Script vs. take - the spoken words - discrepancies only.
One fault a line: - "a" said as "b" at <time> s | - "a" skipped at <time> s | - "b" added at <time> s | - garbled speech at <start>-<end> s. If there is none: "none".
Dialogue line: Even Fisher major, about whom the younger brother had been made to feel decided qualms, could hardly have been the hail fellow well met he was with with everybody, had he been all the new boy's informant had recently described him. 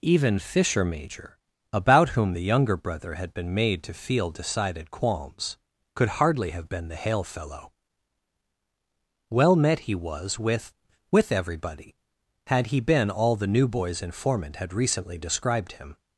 none